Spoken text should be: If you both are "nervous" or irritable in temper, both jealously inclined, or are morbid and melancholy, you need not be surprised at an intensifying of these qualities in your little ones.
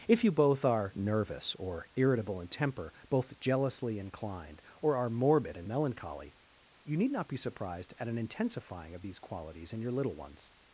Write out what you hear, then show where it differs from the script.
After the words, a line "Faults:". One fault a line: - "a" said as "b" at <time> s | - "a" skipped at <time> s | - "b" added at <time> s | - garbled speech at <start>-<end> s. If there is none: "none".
If you both are "nervous" or irritable in temper, both jealously inclined, or are morbid and melancholy, you need not be surprised at an intensifying of these qualities in your little ones.
Faults:
none